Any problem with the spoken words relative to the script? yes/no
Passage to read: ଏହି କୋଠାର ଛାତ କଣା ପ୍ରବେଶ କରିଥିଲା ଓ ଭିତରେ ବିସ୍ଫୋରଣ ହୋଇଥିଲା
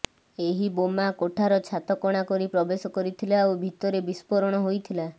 yes